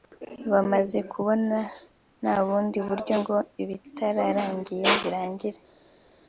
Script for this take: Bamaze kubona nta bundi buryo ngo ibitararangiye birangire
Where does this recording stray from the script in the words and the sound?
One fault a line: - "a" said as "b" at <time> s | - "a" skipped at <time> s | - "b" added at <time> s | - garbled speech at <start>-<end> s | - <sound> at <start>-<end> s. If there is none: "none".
none